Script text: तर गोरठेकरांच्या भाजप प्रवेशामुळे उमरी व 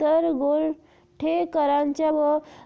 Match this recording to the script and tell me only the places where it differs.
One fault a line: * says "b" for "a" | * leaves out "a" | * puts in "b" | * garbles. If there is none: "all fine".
* leaves out "भाजप प्रवेशामुळे उमरी"